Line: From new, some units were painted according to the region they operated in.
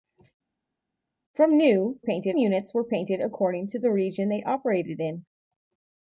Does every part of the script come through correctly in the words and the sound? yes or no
no